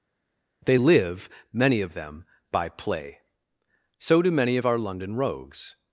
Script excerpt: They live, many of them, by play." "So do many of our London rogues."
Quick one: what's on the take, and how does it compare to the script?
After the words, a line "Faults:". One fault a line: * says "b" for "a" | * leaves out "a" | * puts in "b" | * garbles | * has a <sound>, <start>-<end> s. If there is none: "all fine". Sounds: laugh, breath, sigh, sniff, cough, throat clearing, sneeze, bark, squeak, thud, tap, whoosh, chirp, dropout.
They live, many of them, by play." "So do many of our London rogues."
Faults:
all fine